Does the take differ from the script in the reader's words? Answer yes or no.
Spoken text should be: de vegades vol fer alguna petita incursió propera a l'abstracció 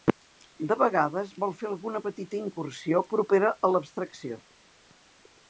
no